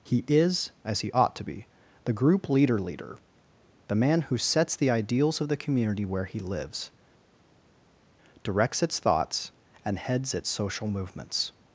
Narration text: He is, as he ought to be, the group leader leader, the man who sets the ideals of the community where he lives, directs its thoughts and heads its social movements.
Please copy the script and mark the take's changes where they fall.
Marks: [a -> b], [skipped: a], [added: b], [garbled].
He is, as he ought to be, the group leader leader, the man who sets the ideals of the community where he lives, directs its thoughts and heads its social movements.